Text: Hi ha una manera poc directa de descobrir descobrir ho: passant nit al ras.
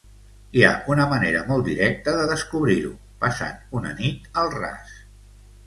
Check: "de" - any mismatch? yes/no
no